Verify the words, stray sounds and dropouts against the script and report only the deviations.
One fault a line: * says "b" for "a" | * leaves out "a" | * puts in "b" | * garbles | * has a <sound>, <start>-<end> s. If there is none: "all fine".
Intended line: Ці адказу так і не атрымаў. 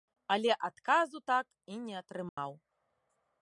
* says "Але" for "Ці"
* has a dropout, 2.3-2.4 s